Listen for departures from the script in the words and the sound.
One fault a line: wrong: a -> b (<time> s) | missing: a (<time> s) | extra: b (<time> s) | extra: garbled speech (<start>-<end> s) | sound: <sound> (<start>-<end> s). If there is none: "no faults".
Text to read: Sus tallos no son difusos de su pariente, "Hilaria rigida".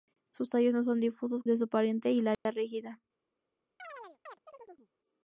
sound: dropout (2.3-2.5 s)
sound: chirp (3.8-4.9 s)